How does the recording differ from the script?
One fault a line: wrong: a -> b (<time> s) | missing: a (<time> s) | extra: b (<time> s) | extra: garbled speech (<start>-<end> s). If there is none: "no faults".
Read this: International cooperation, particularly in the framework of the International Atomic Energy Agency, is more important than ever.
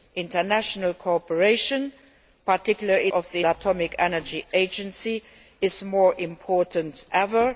missing: in the framework (3.1 s)
missing: International (3.4 s)
missing: than (7.0 s)